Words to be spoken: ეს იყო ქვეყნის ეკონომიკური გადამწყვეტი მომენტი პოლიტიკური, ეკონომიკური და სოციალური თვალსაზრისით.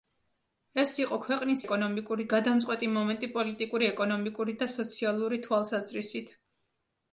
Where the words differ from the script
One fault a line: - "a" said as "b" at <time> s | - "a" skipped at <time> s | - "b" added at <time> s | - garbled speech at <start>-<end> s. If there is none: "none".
none